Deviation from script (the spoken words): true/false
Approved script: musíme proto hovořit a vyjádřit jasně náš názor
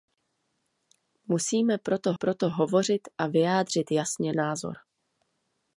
true